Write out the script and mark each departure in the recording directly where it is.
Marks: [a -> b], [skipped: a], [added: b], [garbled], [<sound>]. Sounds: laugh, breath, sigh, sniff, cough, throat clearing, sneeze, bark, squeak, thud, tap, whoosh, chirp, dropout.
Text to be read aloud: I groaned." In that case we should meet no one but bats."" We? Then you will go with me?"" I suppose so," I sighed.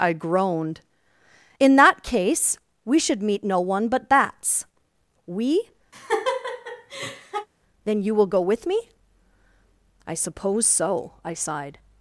I groaned." In that case we should meet no one but bats."" We? [laugh] Then you will go with me?"" I suppose so," I sighed.